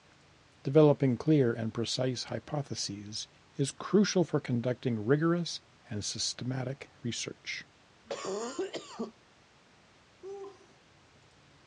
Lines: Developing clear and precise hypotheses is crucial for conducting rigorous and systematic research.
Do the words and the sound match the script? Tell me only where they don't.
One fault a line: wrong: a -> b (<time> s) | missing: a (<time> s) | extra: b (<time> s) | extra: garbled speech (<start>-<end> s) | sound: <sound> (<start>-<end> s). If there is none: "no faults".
sound: cough (8.1-9.1 s)
sound: laugh (10.2-10.8 s)